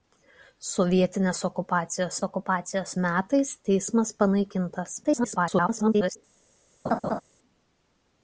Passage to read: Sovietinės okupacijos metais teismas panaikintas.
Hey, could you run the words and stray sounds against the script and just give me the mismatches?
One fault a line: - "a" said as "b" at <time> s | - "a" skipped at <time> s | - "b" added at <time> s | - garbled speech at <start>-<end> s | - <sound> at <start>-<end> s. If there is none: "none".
- "okupacijos" added at 2.3 s
- garbled speech at 5.0-6.2 s
- laugh at 6.9-7.2 s